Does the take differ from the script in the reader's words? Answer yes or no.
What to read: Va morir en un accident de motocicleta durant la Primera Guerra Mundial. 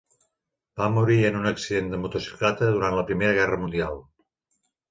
no